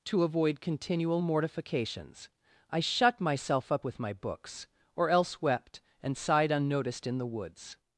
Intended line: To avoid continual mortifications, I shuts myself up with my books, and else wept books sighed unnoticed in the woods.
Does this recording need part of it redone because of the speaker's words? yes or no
yes